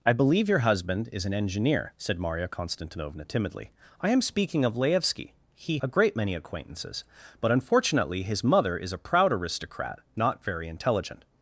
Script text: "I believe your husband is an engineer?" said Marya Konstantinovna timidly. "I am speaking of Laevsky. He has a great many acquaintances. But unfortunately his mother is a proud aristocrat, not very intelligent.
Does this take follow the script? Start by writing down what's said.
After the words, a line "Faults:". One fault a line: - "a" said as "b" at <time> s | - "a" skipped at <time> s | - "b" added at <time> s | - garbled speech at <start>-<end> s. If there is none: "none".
"I believe your husband is an engineer?" said Marya Konstantinovna timidly. "I am speaking of Laevsky. He a great many acquaintances. But unfortunately his mother is a proud aristocrat, not very intelligent.
Faults:
- "has" skipped at 5.8 s